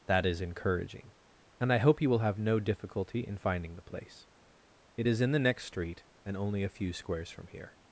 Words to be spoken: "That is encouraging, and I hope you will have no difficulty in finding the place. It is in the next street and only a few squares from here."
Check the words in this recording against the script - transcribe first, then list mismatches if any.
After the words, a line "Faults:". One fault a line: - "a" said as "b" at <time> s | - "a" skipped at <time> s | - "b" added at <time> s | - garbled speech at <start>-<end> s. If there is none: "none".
"That is encouraging, and I hope you will have no difficulty in finding the place. It is in the next street and only a few squares from here."
Faults:
none